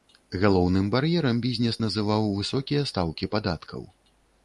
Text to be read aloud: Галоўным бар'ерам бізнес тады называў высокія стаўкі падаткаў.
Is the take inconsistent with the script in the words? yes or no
yes